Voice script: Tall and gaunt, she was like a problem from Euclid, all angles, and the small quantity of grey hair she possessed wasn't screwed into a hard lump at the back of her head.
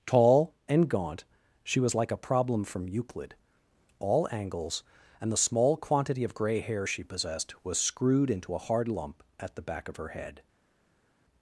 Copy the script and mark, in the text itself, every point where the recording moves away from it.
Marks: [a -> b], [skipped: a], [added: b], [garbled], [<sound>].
Tall and gaunt, she was like a problem from Euclid, all angles, and the small quantity of grey hair she possessed [wasn't -> was] screwed into a hard lump at the back of her head.